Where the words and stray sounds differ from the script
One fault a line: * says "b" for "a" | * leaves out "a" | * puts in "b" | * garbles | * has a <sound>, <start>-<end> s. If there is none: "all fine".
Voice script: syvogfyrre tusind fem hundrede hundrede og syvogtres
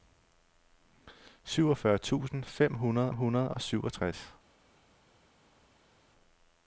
all fine